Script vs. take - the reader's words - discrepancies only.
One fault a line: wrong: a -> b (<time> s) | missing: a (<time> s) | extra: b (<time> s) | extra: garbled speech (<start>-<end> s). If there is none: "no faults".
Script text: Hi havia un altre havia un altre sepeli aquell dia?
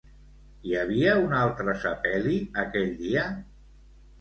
missing: havia un altre (1.8 s)